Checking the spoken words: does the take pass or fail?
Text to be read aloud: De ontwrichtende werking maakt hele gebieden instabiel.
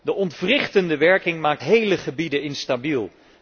pass